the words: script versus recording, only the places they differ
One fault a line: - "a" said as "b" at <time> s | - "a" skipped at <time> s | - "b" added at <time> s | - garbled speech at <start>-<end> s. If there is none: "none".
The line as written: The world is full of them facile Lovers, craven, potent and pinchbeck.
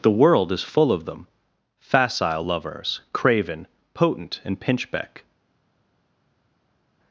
none